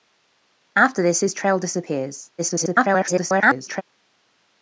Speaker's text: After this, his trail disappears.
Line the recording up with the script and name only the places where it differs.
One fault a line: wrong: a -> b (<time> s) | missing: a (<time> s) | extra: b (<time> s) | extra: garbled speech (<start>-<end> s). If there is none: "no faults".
extra: garbled speech (2.4-3.8 s)